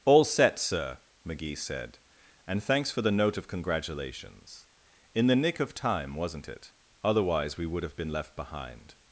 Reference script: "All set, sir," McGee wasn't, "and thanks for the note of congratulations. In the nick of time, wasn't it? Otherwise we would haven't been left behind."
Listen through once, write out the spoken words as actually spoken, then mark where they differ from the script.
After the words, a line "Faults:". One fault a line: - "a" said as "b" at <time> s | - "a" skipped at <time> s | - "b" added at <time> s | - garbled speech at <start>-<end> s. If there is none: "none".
"All set, sir," McGee said, "and thanks for the note of congratulations. In the nick of time, wasn't it? Otherwise we would have been left behind."
Faults:
- "wasn't" said as "said" at 1.6 s
- "haven't" said as "have" at 7.8 s